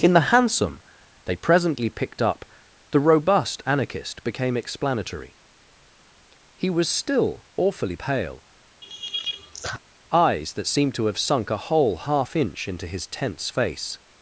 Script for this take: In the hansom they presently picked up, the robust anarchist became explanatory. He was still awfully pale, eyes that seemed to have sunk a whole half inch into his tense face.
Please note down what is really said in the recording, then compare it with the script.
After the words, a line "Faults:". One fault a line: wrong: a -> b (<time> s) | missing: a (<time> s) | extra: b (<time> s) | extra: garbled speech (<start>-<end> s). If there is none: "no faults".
In the hansom they presently picked up, the robust anarchist became explanatory. He was still awfully pale, eyes that seemed to have sunk a whole half inch into his tense face.
Faults:
no faults